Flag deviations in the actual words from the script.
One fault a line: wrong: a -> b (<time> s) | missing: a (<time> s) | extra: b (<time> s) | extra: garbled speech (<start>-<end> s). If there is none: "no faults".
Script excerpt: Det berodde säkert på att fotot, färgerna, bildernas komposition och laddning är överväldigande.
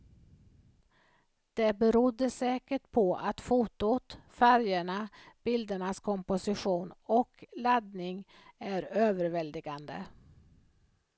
no faults